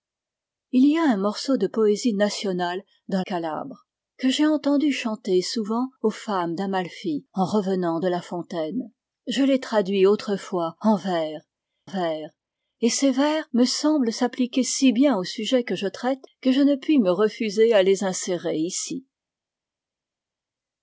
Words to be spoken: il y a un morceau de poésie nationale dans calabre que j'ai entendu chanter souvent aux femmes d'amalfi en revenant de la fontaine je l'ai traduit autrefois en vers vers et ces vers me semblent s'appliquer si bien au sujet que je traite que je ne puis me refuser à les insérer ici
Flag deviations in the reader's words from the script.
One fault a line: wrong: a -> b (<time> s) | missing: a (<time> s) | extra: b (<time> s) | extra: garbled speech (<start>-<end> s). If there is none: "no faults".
no faults